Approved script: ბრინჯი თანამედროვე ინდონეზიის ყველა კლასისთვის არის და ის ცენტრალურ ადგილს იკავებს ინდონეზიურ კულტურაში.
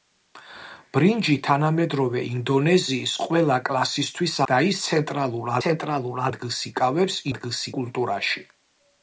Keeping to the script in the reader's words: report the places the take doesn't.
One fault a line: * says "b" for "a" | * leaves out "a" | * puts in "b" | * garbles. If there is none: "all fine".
* leaves out "არის"
* puts in "ცენტრალურ"
* says "ადგილს" for "ინდონეზიურ"